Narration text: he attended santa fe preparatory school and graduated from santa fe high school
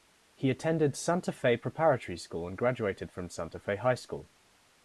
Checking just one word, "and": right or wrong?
right